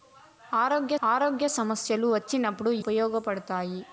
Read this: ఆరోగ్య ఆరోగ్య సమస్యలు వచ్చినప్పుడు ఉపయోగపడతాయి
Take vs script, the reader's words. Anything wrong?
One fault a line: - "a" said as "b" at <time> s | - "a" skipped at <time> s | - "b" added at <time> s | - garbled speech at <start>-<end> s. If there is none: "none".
none